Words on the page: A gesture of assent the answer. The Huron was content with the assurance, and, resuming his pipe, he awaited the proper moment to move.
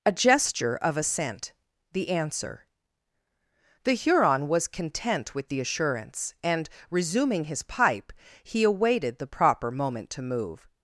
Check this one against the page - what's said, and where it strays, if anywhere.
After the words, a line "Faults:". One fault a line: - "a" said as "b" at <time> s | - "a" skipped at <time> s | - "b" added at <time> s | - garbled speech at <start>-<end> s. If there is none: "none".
A gesture of assent the answer. The Huron was content with the assurance, and, resuming his pipe, he awaited the proper moment to move.
Faults:
none